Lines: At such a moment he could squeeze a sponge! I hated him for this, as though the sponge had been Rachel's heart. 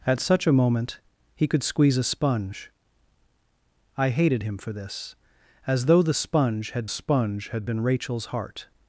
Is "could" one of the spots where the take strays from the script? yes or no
no